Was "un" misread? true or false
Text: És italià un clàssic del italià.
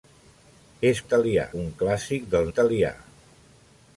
false